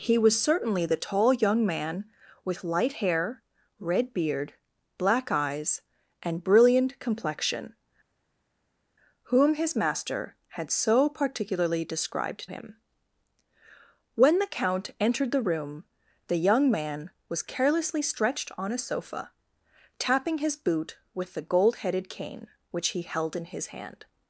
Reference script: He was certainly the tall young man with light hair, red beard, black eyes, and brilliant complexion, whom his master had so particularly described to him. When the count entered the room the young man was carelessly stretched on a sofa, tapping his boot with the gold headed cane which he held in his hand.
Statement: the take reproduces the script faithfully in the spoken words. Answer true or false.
false